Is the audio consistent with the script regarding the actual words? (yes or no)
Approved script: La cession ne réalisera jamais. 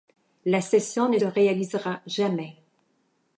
yes